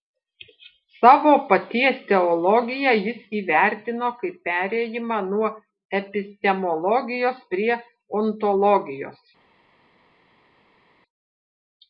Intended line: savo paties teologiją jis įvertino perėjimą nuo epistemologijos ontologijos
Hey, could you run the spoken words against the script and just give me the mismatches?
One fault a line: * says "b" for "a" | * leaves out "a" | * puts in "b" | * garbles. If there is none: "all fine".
* puts in "kaip"
* puts in "prie"